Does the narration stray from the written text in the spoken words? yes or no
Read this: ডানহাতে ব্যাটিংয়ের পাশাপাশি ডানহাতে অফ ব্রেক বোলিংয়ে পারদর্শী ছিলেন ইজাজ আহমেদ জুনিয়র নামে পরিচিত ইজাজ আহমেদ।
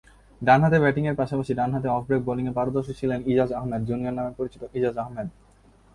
no